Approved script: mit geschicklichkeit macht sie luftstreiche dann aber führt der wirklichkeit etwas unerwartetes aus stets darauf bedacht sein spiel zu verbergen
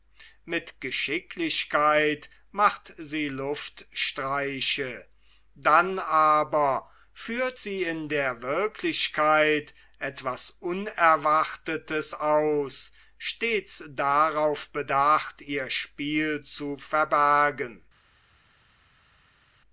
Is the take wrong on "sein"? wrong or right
wrong